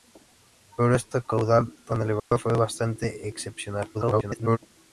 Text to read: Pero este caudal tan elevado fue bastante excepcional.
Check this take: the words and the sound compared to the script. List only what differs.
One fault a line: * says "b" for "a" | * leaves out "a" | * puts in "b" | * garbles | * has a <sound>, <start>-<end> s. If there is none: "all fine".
* has a dropout, 2.2-2.3 s
* garbles